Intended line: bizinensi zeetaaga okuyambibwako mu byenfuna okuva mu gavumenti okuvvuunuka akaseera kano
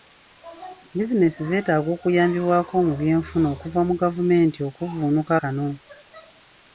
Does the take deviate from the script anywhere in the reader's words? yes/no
yes